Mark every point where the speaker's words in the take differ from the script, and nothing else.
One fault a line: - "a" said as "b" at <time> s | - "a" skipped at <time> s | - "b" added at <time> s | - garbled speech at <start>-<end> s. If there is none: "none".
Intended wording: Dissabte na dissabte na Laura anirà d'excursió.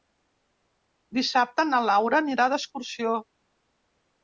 - "dissabte na" skipped at 1.8 s